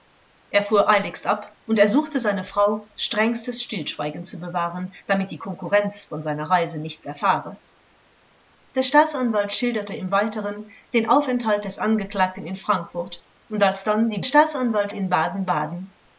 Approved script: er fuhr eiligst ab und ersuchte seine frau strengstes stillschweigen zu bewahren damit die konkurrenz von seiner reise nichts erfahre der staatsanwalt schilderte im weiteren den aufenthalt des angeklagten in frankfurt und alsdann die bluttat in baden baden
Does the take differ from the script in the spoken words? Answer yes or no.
yes